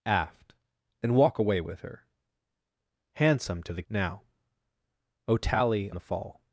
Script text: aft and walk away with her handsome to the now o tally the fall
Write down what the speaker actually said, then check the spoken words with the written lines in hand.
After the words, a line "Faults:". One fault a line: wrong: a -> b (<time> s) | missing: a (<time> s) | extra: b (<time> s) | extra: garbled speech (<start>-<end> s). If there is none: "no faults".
aft and walk away with her handsome to the now o tally the fall
Faults:
no faults